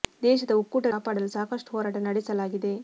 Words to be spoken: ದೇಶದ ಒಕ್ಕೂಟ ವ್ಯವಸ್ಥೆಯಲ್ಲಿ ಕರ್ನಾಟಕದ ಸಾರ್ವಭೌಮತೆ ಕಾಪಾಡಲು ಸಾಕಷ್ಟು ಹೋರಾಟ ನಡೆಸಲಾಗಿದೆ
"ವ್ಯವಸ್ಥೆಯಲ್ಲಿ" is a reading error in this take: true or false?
true